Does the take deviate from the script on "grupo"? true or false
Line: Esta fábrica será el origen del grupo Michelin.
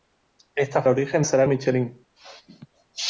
true